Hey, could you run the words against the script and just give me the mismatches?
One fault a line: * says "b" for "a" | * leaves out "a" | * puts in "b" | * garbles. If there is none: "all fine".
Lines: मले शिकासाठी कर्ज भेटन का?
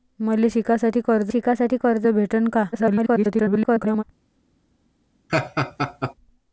* puts in "शिकासाठी कर्ज"
* garbles